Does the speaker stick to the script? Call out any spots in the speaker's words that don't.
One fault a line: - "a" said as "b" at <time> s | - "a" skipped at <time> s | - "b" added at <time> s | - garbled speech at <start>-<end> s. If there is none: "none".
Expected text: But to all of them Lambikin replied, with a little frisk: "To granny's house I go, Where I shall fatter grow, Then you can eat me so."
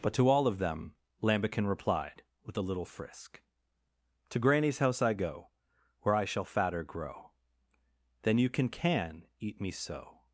- "can" added at 8.7 s